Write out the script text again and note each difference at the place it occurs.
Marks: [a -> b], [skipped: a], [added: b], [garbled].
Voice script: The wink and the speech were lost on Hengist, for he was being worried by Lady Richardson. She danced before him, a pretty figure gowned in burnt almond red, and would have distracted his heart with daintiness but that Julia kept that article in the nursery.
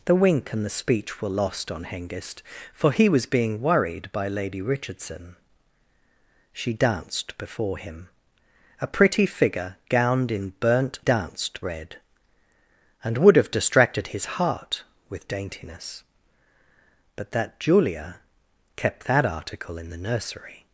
The wink and the speech were lost on Hengist, for he was being worried by Lady Richardson. She danced before him, a pretty figure gowned in burnt [almond -> danced] red, and would have distracted his heart with daintiness but that Julia kept that article in the nursery.